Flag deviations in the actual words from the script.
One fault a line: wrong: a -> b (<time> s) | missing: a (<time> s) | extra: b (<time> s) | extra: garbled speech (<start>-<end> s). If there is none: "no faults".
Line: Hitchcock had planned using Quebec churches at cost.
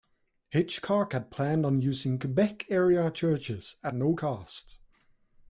extra: on (1.7 s)
extra: area (2.7 s)
extra: no (3.9 s)